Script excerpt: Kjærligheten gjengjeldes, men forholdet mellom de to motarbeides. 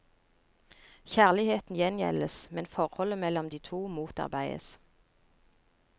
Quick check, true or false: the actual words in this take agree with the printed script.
true